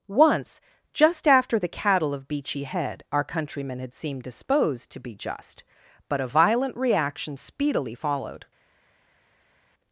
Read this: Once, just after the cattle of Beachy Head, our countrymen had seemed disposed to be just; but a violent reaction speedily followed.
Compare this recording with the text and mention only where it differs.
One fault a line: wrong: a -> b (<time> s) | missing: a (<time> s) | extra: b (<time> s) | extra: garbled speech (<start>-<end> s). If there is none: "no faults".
no faults